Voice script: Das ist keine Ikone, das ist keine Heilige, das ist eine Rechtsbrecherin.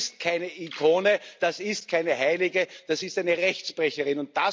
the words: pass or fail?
pass